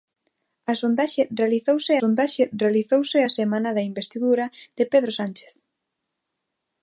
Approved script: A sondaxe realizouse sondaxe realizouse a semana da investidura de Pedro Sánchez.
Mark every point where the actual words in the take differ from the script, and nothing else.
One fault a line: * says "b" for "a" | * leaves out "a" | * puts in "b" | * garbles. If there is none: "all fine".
all fine